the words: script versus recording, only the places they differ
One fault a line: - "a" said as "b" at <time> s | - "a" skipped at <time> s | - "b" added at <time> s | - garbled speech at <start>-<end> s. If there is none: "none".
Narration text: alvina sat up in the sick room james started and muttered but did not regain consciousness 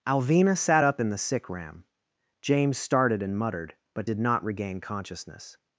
- "room" said as "ram" at 1.5 s